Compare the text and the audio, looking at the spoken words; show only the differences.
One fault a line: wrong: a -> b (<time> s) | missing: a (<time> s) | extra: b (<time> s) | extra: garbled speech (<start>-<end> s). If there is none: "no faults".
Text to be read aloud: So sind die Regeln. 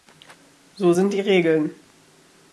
no faults